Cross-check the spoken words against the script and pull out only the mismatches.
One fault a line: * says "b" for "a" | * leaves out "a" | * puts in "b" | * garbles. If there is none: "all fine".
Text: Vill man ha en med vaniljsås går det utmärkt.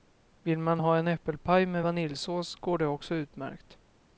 * puts in "äppelpaj"
* puts in "också"